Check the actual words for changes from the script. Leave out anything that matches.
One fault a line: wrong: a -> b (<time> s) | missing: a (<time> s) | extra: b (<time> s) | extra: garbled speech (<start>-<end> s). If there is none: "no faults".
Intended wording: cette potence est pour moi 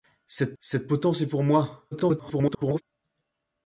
extra: cette (0.6 s)
extra: garbled speech (1.9-2.8 s)